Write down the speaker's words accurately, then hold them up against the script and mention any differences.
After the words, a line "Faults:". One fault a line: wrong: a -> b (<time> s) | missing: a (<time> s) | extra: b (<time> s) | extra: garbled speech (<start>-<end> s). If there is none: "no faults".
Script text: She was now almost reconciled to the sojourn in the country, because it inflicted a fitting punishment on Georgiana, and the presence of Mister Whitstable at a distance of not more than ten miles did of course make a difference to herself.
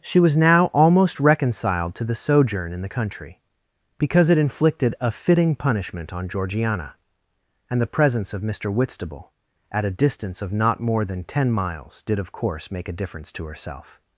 She was now almost reconciled to the sojourn in the country, because it inflicted a fitting punishment on Georgiana, and the presence of Mister Whitstable at a distance of not more than ten miles did of course make a difference to herself.
Faults:
no faults